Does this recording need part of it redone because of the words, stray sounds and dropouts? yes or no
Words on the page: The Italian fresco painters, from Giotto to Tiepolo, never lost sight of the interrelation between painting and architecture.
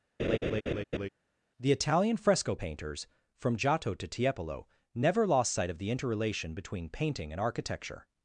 yes